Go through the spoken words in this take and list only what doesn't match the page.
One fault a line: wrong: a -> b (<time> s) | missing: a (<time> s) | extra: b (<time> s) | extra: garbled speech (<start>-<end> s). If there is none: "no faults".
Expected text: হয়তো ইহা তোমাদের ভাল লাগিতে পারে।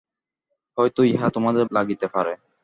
missing: ভাল (1.6 s)